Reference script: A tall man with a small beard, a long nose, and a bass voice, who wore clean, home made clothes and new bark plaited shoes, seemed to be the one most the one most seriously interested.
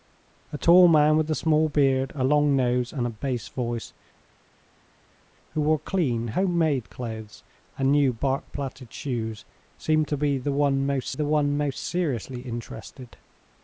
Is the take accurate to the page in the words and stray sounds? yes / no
yes